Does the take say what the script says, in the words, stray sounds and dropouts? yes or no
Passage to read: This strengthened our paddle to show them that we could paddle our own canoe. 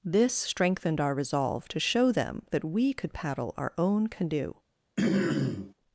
no